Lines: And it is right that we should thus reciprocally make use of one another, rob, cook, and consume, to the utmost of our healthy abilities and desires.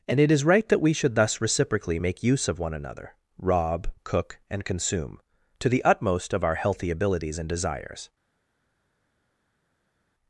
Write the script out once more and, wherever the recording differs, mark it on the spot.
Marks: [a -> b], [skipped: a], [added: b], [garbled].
And it is right that we should thus reciprocally make use of one another, rob, cook, and consume, to the utmost of our healthy abilities and desires.